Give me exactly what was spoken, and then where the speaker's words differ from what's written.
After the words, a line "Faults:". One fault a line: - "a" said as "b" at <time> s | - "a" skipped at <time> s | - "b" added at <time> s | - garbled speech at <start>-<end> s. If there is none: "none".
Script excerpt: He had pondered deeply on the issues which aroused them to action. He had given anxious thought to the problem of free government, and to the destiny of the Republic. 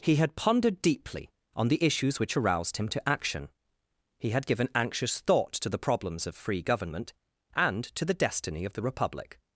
He had pondered deeply on the issues which aroused him to action. He had given anxious thought to the problems of free government, and to the destiny of the Republic.
Faults:
- "them" said as "him" at 2.8 s
- "problem" said as "problems" at 5.8 s